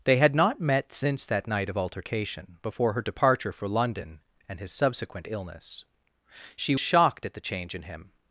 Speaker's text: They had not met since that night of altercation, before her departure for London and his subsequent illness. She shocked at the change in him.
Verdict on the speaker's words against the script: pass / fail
pass